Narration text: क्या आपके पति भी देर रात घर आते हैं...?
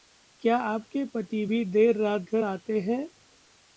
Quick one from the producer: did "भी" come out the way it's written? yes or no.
yes